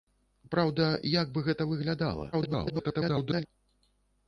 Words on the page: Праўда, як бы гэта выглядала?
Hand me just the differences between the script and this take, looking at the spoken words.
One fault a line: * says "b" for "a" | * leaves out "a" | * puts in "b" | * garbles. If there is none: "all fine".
* garbles